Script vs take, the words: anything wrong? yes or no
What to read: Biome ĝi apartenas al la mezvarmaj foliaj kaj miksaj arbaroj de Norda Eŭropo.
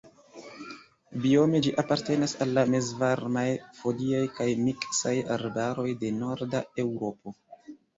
no